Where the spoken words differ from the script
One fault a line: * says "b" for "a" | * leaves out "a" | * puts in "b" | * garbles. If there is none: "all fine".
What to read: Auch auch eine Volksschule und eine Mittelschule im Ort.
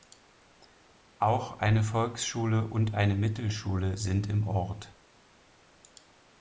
* leaves out "auch"
* puts in "sind"